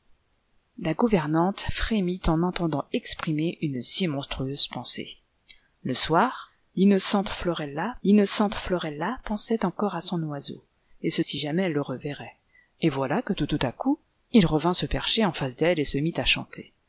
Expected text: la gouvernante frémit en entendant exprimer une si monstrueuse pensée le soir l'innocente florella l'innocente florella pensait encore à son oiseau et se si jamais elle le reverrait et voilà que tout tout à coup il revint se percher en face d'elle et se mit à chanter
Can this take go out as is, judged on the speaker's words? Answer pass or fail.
pass